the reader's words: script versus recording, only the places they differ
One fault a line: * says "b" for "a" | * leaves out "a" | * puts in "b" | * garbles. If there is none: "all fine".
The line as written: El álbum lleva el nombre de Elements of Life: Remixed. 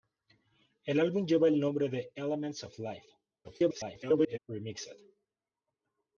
* garbles